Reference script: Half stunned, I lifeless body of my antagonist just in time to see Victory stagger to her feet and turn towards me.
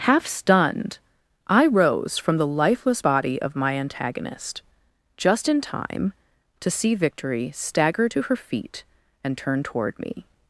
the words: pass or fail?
fail